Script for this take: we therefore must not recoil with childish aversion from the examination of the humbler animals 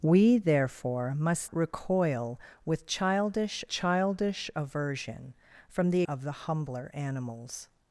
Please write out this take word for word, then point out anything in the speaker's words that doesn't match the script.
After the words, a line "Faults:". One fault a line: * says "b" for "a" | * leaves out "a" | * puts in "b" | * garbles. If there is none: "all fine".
we therefore must recoil with childish childish aversion from the of the humbler animals
Faults:
* leaves out "not"
* puts in "childish"
* leaves out "examination"